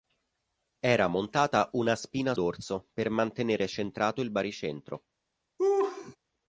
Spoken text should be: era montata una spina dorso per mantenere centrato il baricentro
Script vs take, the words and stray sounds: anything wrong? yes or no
yes